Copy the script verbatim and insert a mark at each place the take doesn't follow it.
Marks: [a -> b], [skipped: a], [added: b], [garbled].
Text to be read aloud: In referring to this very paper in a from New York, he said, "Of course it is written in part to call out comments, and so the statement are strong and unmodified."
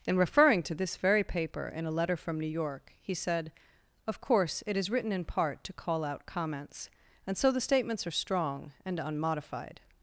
In referring to this very paper in a [added: letter] from New York, he said, "Of course it is written in part to call out comments, and so the [statement -> statements] are strong and unmodified."